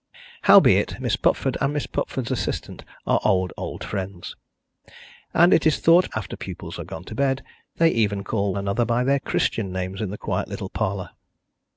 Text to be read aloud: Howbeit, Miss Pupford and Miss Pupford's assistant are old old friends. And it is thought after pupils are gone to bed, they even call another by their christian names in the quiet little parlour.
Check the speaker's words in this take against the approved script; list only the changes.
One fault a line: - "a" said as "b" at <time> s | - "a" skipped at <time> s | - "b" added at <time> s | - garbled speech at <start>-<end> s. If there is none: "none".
none